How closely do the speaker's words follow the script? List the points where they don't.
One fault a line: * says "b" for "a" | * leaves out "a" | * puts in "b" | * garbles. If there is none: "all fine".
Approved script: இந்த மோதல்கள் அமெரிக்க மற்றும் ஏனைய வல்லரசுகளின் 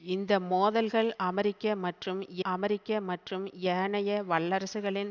* puts in "அமெரிக்க மற்றும்"